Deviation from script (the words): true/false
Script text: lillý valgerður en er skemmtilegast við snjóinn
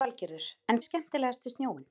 false